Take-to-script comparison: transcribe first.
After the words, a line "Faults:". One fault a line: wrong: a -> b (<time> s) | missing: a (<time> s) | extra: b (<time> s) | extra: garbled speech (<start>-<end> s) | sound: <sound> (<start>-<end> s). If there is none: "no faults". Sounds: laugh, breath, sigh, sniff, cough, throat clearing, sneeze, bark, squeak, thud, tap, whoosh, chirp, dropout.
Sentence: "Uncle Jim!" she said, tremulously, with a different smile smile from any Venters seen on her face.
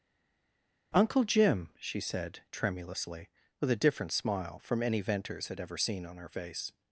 "Uncle Jim!" she said, tremulously, with a different smile from any Venters had ever seen on her face.
Faults:
missing: smile (4.6 s)
extra: had ever (5.5 s)